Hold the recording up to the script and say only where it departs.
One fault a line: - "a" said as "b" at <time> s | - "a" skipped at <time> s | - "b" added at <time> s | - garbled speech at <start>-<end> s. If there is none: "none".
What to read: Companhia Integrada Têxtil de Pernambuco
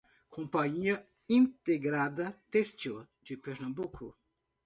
none